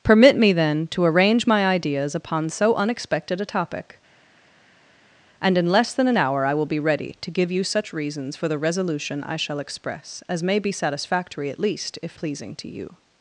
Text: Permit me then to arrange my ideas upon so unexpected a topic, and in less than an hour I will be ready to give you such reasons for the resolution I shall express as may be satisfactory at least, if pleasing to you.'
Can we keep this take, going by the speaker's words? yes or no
yes